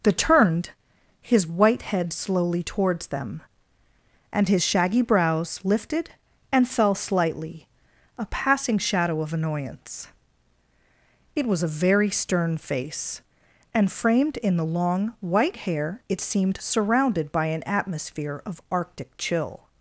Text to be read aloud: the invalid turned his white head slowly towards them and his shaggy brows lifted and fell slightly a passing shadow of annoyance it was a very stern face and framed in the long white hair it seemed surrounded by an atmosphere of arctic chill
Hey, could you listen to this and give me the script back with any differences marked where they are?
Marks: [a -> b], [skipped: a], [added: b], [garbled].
the [skipped: invalid] turned his white head slowly towards them and his shaggy brows lifted and fell slightly a passing shadow of annoyance it was a very stern face and framed in the long white hair it seemed surrounded by an atmosphere of arctic chill